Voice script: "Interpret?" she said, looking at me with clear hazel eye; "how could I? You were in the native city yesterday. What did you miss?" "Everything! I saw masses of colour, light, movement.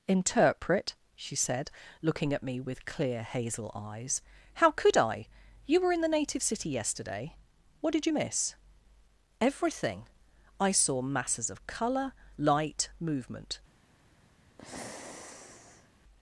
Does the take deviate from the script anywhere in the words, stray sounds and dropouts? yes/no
yes